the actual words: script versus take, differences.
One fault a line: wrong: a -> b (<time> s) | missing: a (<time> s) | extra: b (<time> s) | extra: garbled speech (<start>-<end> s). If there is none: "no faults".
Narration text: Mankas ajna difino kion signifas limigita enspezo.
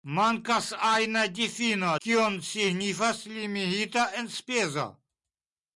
no faults